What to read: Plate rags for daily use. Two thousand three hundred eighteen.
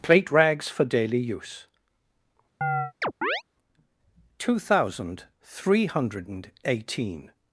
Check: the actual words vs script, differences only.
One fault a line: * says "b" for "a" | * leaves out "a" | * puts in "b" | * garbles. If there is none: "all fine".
all fine